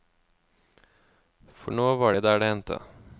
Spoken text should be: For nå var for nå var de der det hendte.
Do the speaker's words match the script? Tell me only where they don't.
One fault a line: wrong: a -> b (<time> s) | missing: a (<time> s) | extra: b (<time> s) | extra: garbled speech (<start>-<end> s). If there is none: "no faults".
missing: for nå var (2.1 s)